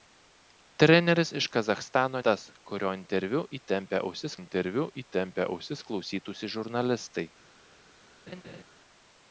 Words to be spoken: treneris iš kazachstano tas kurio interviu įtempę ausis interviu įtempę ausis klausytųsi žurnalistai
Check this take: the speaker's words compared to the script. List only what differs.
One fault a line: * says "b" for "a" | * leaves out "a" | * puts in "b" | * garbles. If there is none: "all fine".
all fine